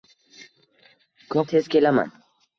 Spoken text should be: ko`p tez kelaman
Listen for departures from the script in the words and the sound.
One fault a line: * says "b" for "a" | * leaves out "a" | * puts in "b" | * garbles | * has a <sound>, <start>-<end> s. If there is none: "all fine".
all fine